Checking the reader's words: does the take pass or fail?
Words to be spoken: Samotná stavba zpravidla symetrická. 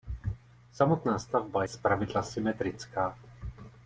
pass